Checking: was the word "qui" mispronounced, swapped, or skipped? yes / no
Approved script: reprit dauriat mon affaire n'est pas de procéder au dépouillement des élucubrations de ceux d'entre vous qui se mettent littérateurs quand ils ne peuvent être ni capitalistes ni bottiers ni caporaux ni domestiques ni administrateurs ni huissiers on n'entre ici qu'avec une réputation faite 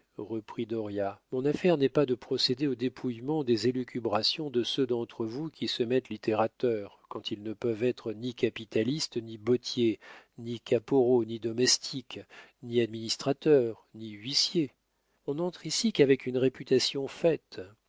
no